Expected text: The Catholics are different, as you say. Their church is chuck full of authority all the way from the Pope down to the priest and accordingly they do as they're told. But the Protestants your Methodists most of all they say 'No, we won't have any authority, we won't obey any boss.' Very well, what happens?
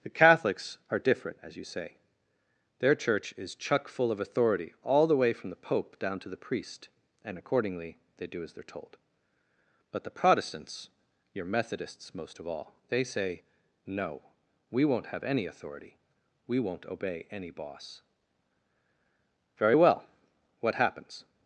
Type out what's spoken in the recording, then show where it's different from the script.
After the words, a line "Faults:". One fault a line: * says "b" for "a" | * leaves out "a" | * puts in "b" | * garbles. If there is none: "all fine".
The Catholics are different, as you say. Their church is chuck full of authority all the way from the Pope down to the priest and accordingly they do as they're told. But the Protestants your Methodists most of all they say 'No, we won't have any authority, we won't obey any boss.' Very well, what happens?
Faults:
all fine